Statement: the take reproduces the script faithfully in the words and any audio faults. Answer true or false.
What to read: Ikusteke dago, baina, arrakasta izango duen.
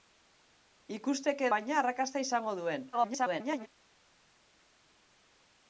false